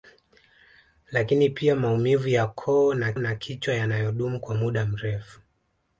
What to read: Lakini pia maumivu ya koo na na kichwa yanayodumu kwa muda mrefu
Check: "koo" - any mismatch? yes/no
no